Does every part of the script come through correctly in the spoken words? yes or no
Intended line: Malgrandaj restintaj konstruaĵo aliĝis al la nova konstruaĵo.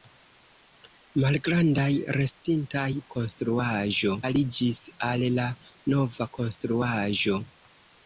yes